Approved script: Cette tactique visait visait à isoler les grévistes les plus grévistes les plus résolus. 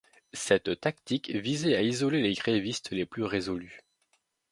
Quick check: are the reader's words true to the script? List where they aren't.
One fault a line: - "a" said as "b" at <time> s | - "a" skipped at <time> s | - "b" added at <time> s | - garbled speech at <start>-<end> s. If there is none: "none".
- "visait" skipped at 1.8 s
- "grévistes les plus" skipped at 3.2 s